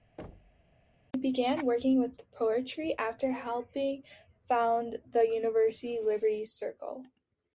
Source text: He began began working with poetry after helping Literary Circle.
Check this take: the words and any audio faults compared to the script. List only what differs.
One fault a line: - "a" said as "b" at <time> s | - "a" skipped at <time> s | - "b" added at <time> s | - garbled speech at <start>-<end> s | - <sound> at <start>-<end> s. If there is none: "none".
- thud at 0.2-0.7 s
- "began" skipped at 1.7 s
- "found the University" added at 4.5 s